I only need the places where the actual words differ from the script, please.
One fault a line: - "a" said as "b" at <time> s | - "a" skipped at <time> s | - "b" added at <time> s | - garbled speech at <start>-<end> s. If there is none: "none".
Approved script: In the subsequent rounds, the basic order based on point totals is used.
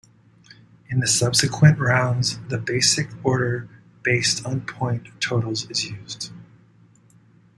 none